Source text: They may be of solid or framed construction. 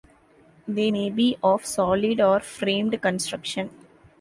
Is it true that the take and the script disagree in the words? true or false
false